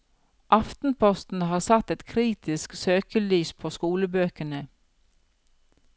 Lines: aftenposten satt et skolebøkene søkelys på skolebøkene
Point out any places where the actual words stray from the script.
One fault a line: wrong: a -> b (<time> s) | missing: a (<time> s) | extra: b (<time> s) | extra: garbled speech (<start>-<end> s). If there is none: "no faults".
extra: har (1.4 s)
wrong: skolebøkene -> kritisk (2.0 s)